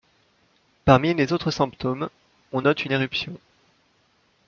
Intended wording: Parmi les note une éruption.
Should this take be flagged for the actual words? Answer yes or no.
yes